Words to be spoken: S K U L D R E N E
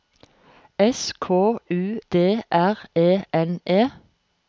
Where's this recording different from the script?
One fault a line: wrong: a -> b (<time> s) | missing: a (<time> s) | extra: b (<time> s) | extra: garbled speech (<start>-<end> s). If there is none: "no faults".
missing: L (2.0 s)